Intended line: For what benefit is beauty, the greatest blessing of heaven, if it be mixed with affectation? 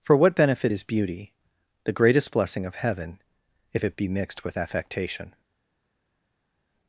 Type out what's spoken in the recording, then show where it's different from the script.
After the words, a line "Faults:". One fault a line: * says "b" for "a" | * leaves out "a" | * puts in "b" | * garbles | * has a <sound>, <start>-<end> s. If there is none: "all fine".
For what benefit is beauty, the greatest blessing of heaven, if it be mixed with affectation?
Faults:
all fine